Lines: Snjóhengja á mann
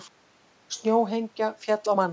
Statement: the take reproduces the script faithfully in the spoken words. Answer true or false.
false